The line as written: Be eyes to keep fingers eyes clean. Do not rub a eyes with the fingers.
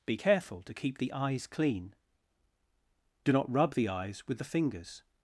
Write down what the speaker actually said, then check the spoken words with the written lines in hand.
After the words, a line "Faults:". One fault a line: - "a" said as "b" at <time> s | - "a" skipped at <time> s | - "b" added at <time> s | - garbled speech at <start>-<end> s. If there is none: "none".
Be careful to keep the eyes clean. Do not rub the eyes with the fingers.
Faults:
- "eyes" said as "careful" at 0.1 s
- "fingers" said as "the" at 1.0 s
- "a" said as "the" at 3.7 s